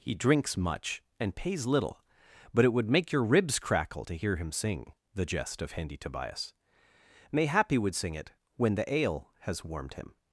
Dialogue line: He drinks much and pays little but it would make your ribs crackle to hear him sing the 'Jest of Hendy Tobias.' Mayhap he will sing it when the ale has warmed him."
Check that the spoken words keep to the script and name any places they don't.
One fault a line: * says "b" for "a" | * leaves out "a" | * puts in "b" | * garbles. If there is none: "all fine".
* says "would" for "will"